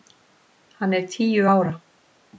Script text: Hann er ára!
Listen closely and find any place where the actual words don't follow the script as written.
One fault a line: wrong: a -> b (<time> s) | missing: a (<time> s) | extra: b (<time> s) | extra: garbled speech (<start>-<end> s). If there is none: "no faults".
extra: tíu (1.1 s)